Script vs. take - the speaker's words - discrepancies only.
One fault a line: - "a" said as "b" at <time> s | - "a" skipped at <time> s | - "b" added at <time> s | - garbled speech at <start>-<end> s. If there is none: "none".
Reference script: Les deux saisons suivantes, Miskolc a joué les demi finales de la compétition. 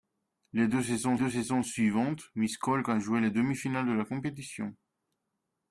- "deux saisons" added at 1.1 s